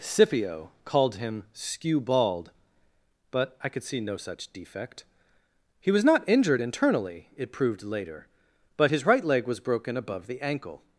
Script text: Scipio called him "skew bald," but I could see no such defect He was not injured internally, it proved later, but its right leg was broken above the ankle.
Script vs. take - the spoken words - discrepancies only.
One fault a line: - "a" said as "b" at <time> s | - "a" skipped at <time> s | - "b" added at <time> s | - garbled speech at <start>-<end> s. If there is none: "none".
- "its" said as "his" at 8.9 s